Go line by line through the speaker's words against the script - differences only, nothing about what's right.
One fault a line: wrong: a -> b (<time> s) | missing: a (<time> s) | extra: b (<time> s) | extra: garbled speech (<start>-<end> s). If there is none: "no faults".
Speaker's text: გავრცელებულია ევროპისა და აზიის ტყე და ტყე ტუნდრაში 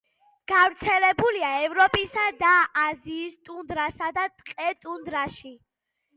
wrong: ტყე -> ტუნდრასა (3.5 s)